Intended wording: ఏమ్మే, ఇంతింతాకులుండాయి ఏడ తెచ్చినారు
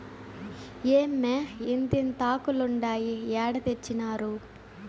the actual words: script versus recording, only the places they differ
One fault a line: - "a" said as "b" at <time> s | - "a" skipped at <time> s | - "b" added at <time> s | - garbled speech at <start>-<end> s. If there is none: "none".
none